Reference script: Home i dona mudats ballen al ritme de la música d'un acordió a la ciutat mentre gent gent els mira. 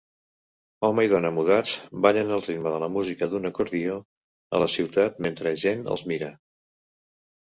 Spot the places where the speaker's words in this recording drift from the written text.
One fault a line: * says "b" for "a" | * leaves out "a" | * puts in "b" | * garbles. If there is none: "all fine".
* leaves out "gent"